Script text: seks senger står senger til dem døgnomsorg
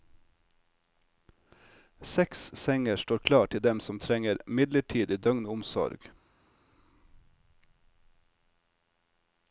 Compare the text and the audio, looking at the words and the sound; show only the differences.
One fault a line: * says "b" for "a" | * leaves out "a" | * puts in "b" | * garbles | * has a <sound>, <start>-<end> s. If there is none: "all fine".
* says "klar" for "senger"
* puts in "som trenger midlertidig"